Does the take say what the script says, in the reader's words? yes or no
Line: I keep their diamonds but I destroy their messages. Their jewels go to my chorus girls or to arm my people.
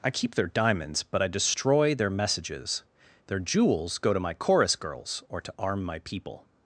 yes